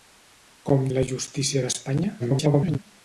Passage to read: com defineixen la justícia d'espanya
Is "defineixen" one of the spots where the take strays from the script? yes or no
yes